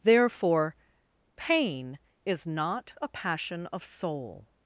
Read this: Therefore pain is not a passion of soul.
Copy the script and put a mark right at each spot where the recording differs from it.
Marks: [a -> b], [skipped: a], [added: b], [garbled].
Therefore pain is not a passion of soul.